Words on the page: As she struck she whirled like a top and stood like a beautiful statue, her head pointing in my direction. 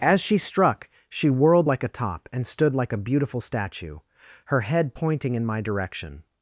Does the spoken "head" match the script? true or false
true